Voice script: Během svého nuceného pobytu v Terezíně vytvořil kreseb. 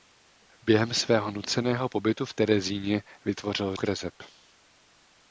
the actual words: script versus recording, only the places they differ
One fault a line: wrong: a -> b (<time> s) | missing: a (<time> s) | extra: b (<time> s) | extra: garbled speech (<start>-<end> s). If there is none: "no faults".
no faults